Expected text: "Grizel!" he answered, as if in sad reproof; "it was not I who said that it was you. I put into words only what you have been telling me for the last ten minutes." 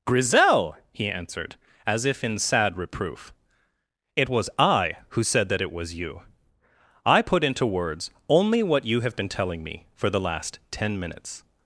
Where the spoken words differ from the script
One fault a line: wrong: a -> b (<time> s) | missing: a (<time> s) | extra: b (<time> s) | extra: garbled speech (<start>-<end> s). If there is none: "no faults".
missing: not (4.5 s)